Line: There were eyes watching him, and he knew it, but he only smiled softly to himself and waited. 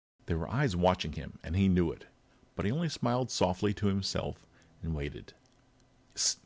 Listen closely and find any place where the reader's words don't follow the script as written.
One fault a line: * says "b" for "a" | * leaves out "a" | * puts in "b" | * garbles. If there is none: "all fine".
all fine